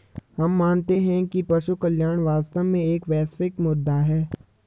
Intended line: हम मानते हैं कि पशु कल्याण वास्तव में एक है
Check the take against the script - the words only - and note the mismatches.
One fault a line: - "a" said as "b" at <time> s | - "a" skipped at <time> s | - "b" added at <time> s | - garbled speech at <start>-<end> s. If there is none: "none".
- "वैश्विक मुद्दा" added at 3.1 s